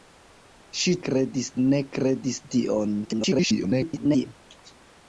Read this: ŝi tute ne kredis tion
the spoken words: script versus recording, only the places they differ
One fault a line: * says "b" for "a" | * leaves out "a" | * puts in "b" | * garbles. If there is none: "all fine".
* says "kredis" for "tute"
* garbles